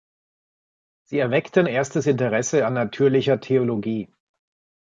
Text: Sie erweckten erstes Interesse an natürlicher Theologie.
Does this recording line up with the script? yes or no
yes